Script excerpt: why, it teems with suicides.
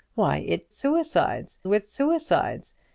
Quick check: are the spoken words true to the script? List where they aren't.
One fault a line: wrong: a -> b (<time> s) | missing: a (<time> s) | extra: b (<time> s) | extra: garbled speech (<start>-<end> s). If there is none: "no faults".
wrong: teems -> suicides (0.7 s)